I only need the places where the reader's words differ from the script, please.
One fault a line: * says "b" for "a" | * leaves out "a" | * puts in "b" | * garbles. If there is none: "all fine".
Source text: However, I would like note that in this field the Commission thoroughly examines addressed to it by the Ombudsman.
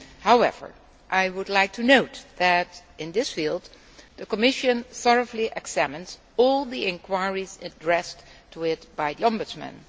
* puts in "to"
* puts in "all the inquiries"